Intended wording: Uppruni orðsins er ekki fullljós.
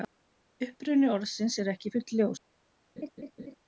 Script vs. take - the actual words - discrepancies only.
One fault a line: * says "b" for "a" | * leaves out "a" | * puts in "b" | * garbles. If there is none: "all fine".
all fine